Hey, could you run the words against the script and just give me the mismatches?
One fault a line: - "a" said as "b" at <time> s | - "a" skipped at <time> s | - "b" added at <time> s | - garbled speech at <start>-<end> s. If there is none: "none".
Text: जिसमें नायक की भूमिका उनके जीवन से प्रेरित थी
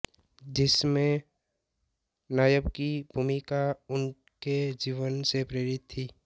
none